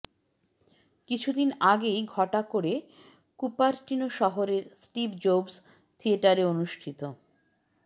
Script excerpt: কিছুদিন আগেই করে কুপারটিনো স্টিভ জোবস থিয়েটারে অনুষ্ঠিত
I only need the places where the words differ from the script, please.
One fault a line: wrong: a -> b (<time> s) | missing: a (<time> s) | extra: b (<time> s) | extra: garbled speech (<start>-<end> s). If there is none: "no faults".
extra: ঘটা (2.1 s)
extra: শহরের (4.2 s)